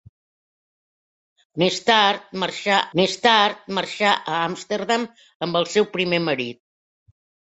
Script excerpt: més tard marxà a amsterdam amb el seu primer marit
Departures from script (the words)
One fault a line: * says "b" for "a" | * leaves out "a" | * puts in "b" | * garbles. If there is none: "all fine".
* puts in "més tard marxà"